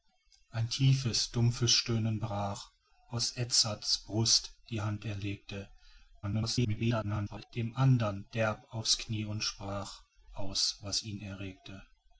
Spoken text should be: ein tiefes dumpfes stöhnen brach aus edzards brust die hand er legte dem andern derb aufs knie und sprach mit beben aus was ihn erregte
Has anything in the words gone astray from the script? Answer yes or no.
yes